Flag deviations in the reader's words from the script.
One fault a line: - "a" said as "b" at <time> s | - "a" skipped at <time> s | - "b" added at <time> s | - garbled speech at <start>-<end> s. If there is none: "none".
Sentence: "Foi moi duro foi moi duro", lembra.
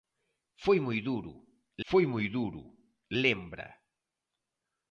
none